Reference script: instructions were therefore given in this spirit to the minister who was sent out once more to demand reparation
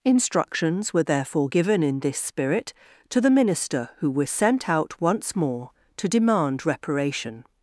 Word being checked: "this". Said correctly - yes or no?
yes